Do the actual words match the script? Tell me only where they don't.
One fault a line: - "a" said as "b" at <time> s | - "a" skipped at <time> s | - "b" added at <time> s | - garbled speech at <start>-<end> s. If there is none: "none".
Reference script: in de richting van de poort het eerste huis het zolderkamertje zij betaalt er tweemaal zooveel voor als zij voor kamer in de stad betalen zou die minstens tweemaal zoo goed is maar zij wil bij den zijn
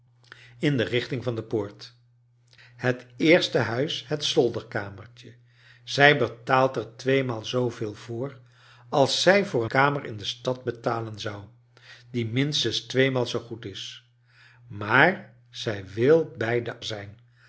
none